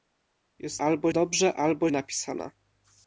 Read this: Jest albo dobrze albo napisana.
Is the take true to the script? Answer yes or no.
yes